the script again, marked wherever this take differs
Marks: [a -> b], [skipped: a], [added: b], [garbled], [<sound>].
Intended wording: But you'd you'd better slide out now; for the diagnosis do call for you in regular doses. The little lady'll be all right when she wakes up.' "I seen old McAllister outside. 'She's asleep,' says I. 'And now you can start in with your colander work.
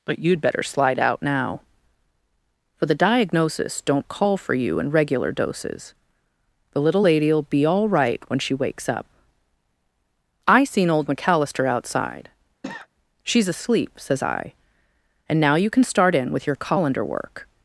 But you'd [skipped: you'd] better slide out now; for the diagnosis [do -> don't] call for you in regular doses. The little lady'll be all right when she wakes up.' "I seen old McAllister outside. [cough] 'She's asleep,' says I. 'And now you can start in with your colander work.